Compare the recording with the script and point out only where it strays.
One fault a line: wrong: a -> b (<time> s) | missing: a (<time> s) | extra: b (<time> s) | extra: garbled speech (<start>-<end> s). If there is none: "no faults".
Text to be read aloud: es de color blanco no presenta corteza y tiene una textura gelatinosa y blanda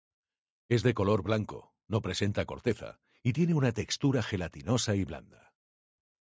no faults